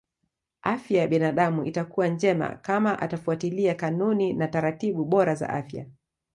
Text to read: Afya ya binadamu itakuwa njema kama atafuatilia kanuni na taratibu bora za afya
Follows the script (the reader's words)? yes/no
yes